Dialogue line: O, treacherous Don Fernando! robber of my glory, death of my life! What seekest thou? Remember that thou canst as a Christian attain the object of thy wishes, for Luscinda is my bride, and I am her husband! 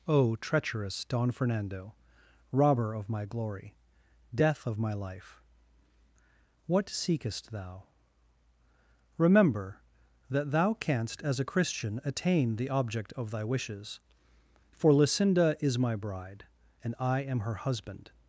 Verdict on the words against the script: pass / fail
pass